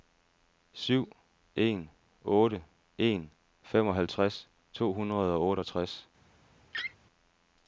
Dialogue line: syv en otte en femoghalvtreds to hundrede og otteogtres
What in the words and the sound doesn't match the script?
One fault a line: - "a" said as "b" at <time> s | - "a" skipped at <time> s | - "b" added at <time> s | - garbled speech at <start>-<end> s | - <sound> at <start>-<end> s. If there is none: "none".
- laugh at 6.7-7.0 s